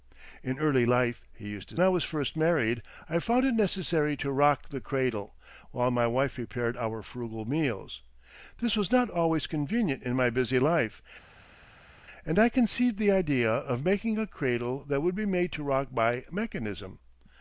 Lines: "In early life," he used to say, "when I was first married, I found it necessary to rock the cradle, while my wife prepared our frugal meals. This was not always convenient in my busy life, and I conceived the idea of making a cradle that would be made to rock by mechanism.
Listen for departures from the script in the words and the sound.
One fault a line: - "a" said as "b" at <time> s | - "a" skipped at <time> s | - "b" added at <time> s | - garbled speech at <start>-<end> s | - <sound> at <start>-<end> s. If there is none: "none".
- "say when" skipped at 1.8 s